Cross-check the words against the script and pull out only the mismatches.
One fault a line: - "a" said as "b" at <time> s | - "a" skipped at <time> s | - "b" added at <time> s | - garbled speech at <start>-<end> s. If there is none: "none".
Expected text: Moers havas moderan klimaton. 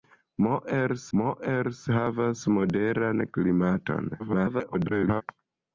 - "moers" added at 1.2 s
- garbled speech at 4.2-5.2 s